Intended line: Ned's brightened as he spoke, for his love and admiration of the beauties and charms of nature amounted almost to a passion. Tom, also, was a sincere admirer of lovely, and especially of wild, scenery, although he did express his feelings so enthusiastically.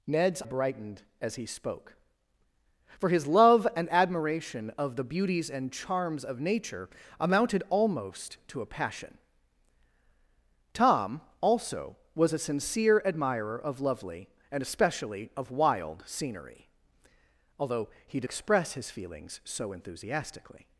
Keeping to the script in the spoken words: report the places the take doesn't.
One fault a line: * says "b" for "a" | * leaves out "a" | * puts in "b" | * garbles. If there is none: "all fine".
all fine